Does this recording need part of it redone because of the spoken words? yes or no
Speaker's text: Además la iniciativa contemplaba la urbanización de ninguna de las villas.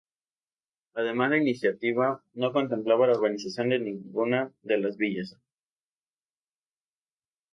yes